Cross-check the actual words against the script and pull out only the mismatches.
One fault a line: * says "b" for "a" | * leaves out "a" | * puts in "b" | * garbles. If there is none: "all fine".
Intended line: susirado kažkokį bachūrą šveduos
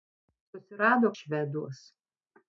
* leaves out "kažkokį bachūrą"